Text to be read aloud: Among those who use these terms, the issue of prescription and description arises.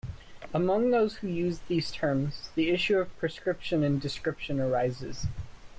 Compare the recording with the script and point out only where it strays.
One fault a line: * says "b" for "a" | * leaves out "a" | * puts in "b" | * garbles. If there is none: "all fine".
all fine